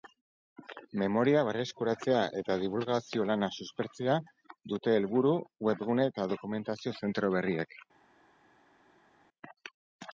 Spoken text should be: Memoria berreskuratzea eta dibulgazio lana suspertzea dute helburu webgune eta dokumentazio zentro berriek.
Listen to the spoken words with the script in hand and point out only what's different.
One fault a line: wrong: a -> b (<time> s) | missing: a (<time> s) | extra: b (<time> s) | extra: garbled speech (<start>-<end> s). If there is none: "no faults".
no faults